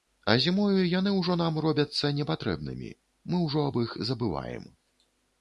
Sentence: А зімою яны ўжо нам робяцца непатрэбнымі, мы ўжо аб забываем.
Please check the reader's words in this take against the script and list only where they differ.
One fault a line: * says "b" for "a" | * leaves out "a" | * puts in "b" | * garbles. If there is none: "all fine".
* puts in "іх"